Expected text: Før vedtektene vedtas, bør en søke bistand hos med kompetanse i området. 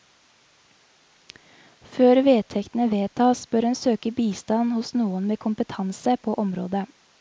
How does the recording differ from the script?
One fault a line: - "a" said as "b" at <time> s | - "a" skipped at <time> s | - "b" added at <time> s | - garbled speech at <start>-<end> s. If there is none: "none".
- "noen" added at 5.0 s
- "i" said as "på" at 6.3 s